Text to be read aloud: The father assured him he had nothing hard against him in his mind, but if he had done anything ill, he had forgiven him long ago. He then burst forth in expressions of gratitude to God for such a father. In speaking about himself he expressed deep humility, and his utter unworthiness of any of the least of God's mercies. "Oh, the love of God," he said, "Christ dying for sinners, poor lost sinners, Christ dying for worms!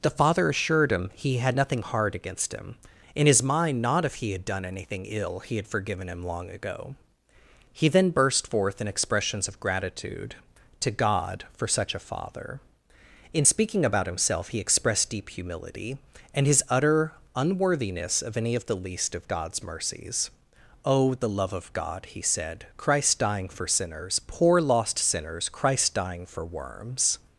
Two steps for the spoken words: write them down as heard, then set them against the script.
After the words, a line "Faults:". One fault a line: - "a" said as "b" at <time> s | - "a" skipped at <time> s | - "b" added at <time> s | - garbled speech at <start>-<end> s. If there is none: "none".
The father assured him he had nothing hard against him in his mind, not if he had done anything ill, he had forgiven him long ago. He then burst forth in expressions of gratitude to God for such a father. In speaking about himself he expressed deep humility, and his utter unworthiness of any of the least of God's mercies. "Oh, the love of God," he said, "Christ dying for sinners, poor lost sinners, Christ dying for worms!
Faults:
- "but" said as "not" at 3.8 s